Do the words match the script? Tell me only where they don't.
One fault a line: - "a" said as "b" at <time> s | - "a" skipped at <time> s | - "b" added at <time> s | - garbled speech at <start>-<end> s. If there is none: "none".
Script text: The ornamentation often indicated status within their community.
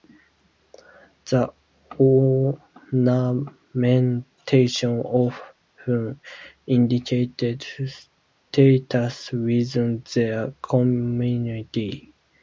none